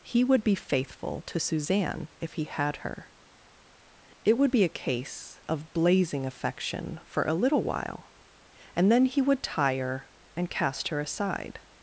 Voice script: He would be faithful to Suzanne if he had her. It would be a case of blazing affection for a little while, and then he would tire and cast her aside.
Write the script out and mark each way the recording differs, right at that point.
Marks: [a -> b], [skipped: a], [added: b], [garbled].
He would be faithful to Suzanne if he had her. It would be a case of blazing affection for a little while, and then he would tire and cast her aside.